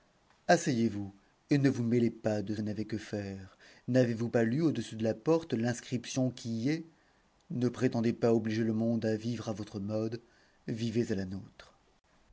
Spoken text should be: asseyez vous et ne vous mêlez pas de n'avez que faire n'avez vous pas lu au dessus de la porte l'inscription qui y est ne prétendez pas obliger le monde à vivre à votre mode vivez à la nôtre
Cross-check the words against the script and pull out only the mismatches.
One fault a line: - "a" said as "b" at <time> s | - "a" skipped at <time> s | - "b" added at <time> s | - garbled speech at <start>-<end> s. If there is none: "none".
none